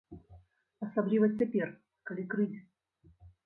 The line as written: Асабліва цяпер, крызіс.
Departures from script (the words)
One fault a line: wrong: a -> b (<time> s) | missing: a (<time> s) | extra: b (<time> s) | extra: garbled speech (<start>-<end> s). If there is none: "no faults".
extra: калі (2.1 s)